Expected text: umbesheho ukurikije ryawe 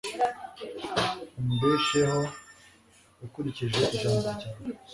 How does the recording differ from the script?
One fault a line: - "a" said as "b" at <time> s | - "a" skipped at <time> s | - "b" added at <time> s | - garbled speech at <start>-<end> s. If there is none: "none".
- "ijambo" added at 4.0 s